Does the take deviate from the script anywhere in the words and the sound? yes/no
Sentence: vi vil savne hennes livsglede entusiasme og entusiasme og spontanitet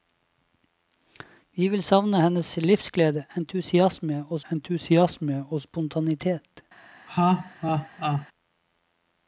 yes